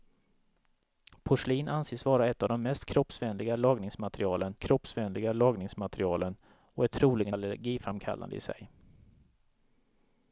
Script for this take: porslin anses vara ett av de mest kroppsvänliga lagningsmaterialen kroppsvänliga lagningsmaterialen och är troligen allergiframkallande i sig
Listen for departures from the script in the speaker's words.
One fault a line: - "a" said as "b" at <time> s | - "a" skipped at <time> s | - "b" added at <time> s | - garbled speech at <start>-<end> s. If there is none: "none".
none